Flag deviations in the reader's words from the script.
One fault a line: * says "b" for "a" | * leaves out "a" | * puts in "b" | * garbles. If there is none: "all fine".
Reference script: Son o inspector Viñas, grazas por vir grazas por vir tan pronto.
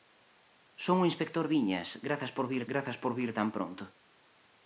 all fine